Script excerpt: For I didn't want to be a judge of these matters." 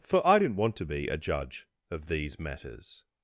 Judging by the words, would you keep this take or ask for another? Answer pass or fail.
pass